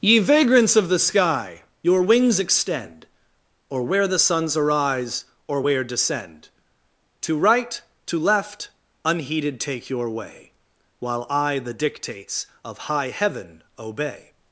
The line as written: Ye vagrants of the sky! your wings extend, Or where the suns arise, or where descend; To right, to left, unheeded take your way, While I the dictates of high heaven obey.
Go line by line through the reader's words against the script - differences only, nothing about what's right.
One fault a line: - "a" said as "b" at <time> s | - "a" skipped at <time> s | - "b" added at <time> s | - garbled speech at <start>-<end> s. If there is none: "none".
none